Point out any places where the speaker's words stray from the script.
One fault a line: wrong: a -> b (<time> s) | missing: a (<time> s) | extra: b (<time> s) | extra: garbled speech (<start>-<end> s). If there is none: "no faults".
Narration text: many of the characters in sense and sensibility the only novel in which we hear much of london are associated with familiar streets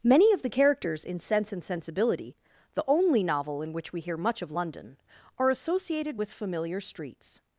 no faults